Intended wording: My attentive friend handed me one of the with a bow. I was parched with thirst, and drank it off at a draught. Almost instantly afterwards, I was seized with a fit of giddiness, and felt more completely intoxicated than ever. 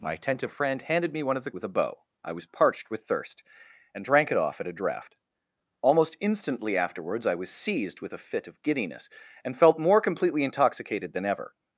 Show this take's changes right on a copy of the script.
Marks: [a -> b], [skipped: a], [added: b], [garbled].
My attentive friend handed me one of the with a bow. I was parched with thirst, and drank it off at a draught. Almost instantly afterwards, I was seized with a fit of giddiness, and felt more completely intoxicated than ever.